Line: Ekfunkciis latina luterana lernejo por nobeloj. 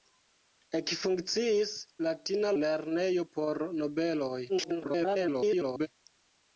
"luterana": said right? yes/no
no